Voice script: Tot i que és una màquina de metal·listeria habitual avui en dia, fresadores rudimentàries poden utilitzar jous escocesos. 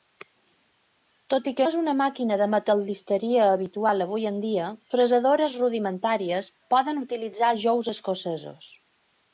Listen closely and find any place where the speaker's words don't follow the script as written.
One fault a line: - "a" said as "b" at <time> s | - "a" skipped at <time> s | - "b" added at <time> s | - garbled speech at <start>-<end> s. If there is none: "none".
none